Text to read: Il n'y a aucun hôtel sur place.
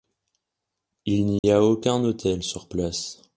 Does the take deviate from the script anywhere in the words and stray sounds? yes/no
yes